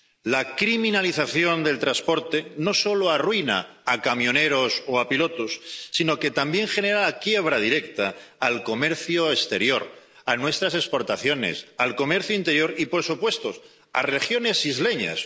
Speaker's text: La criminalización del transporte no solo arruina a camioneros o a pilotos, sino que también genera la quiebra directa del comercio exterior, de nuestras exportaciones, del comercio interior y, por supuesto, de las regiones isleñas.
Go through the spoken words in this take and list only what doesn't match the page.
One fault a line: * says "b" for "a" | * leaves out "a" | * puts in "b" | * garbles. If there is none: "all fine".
all fine